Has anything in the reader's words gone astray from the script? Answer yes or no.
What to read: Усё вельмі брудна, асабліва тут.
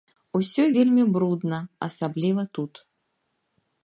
no